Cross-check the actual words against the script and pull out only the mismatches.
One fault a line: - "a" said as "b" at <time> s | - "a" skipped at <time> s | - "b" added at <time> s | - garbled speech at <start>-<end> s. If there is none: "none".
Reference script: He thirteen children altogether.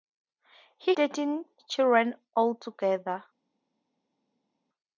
none